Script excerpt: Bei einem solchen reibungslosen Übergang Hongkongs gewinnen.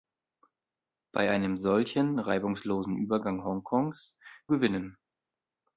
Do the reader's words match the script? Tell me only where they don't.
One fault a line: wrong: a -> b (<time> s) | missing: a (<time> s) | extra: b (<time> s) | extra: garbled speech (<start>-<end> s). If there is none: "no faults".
no faults